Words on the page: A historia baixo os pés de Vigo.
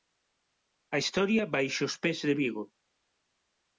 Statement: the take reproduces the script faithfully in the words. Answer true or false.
true